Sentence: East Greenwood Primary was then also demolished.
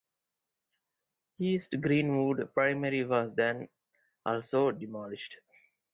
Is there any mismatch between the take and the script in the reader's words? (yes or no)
no